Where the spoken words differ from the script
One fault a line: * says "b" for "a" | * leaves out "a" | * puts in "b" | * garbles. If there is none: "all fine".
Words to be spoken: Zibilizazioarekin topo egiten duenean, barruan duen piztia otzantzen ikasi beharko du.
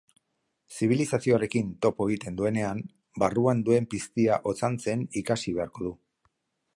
all fine